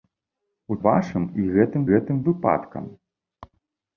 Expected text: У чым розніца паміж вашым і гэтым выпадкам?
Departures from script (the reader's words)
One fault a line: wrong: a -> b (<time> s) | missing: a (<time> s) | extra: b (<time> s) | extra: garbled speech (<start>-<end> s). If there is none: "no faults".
missing: чым розніца паміж (0.8 s)
extra: гэтым (1.9 s)